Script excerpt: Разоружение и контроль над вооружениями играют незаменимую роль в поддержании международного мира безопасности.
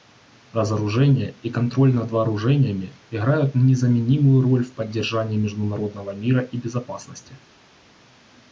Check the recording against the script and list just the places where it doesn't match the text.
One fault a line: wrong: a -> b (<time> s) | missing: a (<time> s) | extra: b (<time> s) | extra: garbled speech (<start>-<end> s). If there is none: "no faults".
extra: и (6.4 s)